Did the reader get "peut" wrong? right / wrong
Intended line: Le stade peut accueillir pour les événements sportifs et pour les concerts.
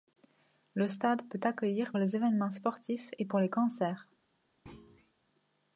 right